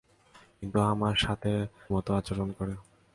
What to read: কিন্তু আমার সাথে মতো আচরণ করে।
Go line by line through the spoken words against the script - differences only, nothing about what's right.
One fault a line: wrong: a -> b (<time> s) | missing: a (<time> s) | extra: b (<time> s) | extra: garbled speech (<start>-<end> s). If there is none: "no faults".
no faults